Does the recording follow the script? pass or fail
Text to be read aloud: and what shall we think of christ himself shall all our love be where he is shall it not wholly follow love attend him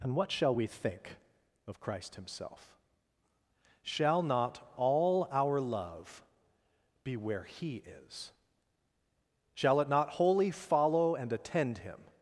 fail